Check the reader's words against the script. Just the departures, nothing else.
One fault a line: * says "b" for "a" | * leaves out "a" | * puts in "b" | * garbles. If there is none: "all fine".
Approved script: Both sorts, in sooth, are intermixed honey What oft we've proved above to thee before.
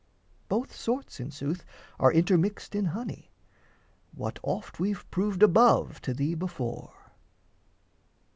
* puts in "in"